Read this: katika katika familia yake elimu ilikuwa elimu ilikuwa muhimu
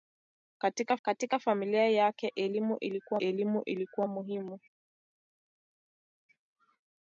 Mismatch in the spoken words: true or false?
false